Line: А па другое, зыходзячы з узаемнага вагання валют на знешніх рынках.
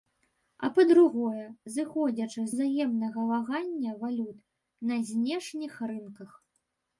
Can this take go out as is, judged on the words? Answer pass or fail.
fail